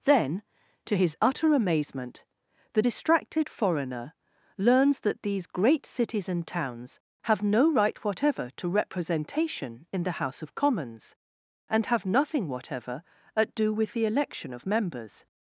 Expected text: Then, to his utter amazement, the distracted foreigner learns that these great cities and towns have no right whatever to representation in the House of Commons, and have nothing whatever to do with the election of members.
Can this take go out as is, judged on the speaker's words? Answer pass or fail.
fail